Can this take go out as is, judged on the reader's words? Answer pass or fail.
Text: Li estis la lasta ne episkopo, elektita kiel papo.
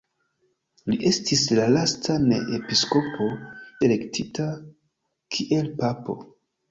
pass